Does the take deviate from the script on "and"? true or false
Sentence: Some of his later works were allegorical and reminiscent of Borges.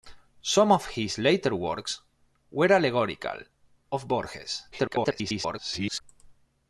true